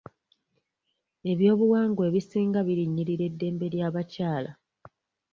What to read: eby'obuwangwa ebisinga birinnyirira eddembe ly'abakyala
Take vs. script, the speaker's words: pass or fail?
pass